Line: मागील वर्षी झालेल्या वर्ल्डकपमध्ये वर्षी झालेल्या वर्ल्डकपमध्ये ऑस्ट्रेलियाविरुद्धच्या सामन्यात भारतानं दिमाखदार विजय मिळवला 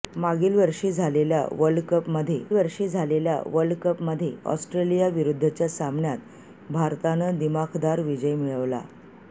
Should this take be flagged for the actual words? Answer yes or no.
no